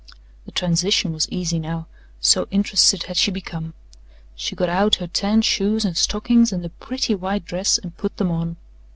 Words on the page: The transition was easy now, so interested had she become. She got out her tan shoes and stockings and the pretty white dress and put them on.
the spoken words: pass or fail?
pass